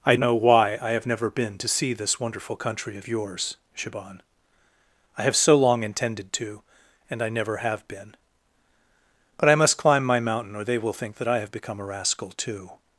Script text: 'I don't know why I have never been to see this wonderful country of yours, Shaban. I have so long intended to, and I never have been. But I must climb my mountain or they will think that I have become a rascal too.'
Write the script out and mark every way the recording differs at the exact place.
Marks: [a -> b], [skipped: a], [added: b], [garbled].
'I [skipped: don't] know why I have never been to see this wonderful country of yours, Shaban. I have so long intended to, and I never have been. But I must climb my mountain or they will think that I have become a rascal too.'